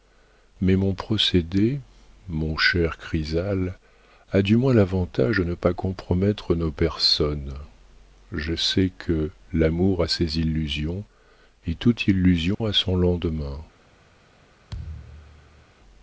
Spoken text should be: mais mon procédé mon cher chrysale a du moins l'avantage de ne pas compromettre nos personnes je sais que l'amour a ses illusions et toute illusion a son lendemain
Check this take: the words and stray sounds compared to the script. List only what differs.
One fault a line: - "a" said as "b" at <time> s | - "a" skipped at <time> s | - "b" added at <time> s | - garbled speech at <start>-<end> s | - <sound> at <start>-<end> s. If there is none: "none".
- dropout at 12.5-12.6 s
- thud at 14.7-15.7 s